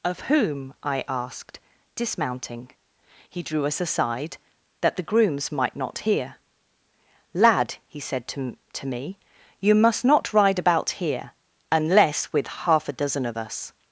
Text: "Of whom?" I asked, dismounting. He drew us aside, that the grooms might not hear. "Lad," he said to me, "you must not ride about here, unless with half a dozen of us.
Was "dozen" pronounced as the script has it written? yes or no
yes